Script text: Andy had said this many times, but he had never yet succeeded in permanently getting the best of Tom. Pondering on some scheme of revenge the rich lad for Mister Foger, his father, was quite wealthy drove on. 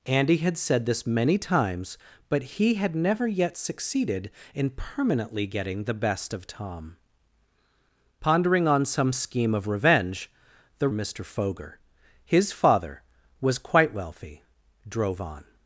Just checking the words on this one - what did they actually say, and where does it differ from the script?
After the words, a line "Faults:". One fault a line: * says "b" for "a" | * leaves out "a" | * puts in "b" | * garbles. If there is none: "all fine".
Andy had said this many times, but he had never yet succeeded in permanently getting the best of Tom. Pondering on some scheme of revenge the Mister Foger, his father, was quite wealthy drove on.
Faults:
* leaves out "rich lad for"